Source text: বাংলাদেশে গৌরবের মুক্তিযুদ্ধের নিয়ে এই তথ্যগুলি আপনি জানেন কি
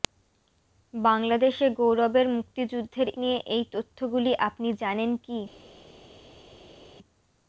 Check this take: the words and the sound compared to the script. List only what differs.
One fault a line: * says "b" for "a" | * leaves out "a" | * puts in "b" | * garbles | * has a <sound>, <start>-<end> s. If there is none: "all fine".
all fine